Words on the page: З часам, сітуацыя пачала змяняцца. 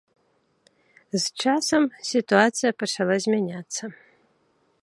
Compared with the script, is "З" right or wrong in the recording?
right